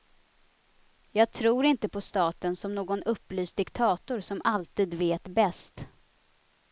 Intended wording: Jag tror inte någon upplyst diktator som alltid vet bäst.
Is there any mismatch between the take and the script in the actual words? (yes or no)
yes